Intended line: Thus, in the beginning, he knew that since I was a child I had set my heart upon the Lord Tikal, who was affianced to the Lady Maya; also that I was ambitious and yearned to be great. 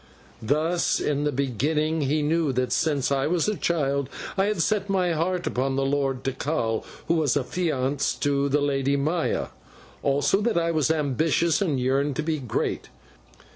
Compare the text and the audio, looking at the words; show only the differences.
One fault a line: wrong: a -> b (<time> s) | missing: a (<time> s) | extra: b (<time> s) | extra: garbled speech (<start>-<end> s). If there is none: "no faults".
no faults